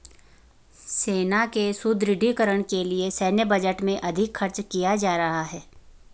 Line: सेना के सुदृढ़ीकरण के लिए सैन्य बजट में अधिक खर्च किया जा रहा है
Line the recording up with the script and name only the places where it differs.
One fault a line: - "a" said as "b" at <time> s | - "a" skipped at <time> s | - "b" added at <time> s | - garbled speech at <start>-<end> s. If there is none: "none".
none